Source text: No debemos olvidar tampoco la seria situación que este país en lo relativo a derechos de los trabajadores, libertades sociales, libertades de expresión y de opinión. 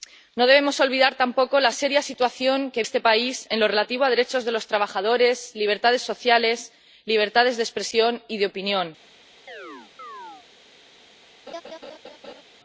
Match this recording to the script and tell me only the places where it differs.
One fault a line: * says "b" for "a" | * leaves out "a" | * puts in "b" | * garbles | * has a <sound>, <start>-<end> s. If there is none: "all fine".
* has a chirp, 9.5-10.5 s
* has a laugh, 11.5-12.4 s